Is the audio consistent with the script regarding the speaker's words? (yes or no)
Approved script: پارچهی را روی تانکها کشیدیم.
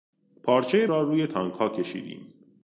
yes